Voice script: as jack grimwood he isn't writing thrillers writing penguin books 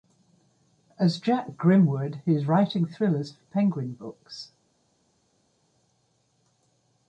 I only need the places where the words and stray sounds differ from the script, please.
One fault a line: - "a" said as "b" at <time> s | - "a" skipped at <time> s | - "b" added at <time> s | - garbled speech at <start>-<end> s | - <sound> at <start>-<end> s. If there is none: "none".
- "isn't" said as "is" at 2.3 s
- "writing" said as "for" at 3.3 s